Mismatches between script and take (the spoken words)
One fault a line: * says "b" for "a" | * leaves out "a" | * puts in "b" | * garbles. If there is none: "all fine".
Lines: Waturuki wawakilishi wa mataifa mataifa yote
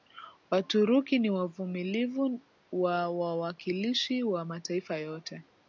* puts in "ni wavumilivu wa"
* leaves out "mataifa"